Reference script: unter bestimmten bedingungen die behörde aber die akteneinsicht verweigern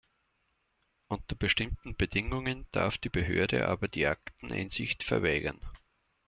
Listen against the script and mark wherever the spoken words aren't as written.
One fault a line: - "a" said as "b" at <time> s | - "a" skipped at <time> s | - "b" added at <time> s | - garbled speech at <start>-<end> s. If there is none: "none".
- "darf" added at 2.7 s